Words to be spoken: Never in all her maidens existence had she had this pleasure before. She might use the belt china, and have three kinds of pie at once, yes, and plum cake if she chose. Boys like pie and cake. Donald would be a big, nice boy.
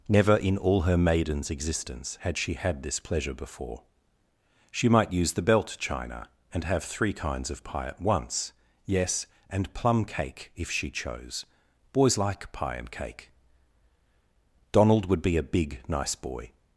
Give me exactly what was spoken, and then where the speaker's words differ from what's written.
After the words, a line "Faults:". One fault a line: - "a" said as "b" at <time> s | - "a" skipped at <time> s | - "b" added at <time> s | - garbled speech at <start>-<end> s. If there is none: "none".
Never in all her maidens existence had she had this pleasure before. She might use the belt china, and have three kinds of pie at once, yes, and plum cake if she chose. Boys like pie and cake. Donald would be a big, nice boy.
Faults:
none